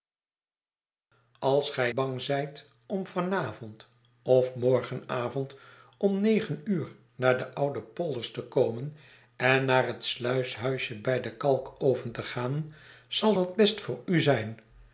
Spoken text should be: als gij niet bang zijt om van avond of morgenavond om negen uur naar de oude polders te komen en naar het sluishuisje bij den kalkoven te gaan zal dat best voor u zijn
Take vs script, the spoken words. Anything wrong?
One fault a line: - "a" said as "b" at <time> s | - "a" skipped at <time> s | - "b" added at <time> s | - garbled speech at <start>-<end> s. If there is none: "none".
- "niet" skipped at 1.9 s